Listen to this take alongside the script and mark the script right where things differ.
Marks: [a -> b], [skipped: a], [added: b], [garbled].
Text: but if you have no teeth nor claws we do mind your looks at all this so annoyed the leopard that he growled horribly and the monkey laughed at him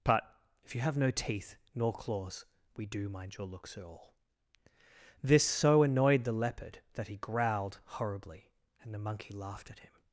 but if you have no teeth nor claws we do mind your looks at all this so annoyed the leopard that he growled horribly and the monkey laughed at him